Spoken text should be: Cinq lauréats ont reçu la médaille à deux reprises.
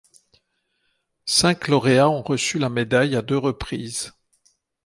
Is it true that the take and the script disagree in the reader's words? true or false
false